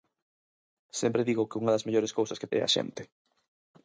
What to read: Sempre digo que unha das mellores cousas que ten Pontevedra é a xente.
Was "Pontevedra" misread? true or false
true